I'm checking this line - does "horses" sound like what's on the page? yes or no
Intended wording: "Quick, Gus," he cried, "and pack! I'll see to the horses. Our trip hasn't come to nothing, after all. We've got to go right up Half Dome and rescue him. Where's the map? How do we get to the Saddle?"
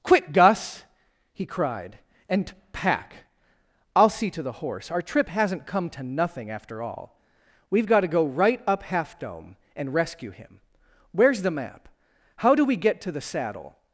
no